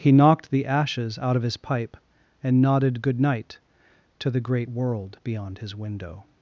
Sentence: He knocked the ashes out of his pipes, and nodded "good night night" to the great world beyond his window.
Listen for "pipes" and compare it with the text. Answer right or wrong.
wrong